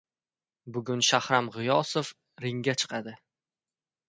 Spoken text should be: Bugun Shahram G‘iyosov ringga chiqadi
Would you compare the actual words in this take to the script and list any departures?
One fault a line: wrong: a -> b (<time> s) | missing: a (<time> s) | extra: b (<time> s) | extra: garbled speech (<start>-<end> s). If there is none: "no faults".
no faults